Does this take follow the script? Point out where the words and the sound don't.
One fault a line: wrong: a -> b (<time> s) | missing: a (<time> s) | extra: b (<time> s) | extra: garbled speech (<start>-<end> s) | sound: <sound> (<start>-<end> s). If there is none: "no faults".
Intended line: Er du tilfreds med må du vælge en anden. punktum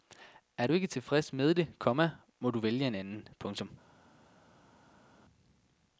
extra: ikke (0.7 s)
extra: det komma (1.5 s)